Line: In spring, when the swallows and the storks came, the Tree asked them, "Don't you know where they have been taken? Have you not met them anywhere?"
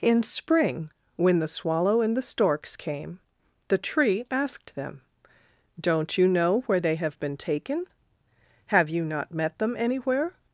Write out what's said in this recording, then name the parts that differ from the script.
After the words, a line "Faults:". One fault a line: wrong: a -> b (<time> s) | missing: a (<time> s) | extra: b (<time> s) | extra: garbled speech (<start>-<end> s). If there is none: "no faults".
In spring, when the swallow and the storks came, the Tree asked them, "Don't you know where they have been taken? Have you not met them anywhere?"
Faults:
wrong: swallows -> swallow (1.5 s)